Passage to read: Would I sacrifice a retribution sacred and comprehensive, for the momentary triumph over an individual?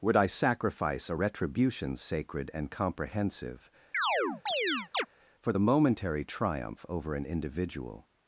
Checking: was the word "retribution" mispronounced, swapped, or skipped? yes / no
no